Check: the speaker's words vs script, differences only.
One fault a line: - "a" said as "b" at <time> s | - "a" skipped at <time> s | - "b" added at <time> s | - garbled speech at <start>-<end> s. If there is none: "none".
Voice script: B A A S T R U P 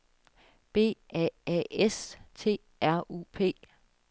none